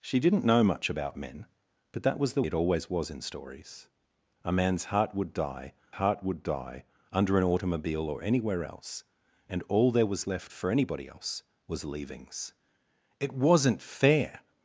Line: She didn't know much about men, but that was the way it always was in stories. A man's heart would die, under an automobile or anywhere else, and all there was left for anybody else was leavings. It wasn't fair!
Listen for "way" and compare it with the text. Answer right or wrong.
wrong